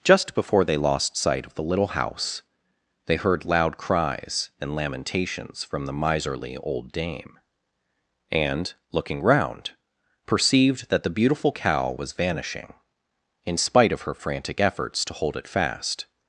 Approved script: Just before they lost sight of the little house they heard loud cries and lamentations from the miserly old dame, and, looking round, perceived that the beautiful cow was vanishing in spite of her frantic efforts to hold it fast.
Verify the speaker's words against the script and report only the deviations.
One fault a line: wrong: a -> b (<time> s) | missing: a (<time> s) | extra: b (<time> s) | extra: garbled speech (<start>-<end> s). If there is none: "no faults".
no faults